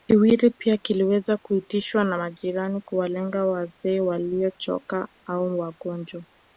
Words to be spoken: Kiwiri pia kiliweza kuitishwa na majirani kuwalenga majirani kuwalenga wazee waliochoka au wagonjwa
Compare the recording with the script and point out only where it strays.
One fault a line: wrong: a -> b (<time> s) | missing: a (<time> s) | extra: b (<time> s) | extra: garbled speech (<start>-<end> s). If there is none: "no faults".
missing: majirani kuwalenga (3.5 s)